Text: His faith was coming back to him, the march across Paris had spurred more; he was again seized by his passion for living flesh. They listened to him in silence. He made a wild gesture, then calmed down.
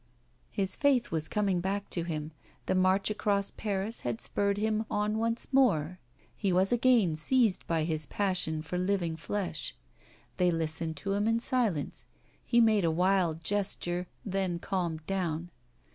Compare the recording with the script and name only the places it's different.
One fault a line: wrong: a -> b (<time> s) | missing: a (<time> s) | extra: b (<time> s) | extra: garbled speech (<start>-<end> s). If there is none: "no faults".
extra: him on once (4.6 s)